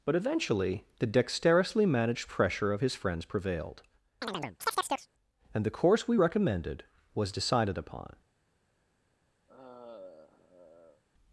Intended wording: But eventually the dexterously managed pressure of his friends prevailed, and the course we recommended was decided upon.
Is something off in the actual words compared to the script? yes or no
no